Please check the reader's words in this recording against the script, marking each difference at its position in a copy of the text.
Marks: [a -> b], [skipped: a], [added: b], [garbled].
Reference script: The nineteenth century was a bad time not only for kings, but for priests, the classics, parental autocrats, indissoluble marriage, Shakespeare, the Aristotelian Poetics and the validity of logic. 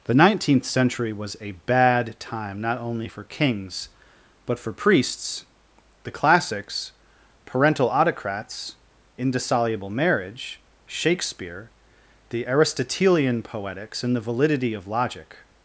The nineteenth century was a bad time not only for kings, but for priests, the classics, parental autocrats, indissoluble marriage, Shakespeare, the Aristotelian Poetics and the validity of logic.